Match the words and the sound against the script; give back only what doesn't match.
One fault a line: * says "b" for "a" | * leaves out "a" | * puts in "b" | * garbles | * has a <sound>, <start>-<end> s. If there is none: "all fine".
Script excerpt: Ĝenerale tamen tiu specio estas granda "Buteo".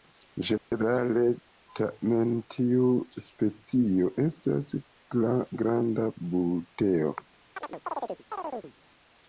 * has a dropout, 0.6-0.7 s
* has a chirp, 7.6-8.7 s